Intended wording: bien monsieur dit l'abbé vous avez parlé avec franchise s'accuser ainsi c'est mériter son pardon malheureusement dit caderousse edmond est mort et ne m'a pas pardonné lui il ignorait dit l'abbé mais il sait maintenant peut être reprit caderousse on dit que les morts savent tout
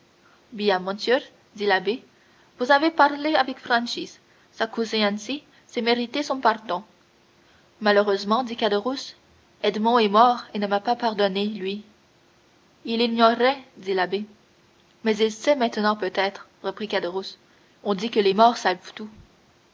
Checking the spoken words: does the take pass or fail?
pass